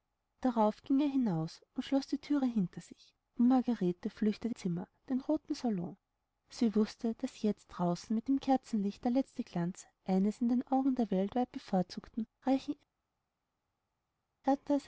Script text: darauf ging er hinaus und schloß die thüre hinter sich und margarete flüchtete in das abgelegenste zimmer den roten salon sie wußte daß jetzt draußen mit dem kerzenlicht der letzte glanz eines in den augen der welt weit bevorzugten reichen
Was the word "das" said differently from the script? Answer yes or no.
yes